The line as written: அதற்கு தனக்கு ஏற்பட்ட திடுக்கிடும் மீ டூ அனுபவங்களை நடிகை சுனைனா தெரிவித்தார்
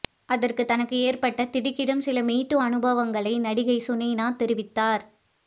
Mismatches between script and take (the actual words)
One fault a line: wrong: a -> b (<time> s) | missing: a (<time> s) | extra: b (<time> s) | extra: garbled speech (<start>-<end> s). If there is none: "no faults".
extra: சில (2.0 s)